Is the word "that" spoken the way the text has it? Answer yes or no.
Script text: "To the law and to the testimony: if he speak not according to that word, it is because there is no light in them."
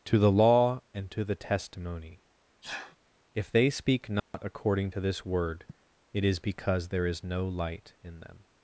no